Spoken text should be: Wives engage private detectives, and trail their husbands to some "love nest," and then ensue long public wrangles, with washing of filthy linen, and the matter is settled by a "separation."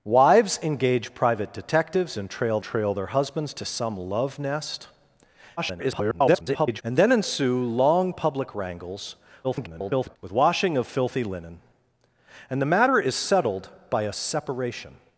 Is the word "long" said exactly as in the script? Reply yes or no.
yes